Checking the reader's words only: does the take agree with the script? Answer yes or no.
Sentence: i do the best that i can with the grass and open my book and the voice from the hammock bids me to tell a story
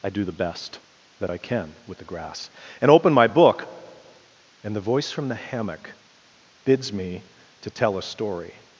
yes